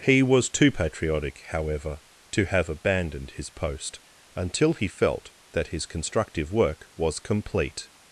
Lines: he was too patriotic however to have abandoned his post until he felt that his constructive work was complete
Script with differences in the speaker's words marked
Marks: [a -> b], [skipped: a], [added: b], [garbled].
he was too patriotic however to have abandoned his post until he felt that his constructive work was complete